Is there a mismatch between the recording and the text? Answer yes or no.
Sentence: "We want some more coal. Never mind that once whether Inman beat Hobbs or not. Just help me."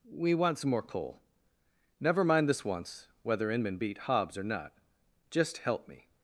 yes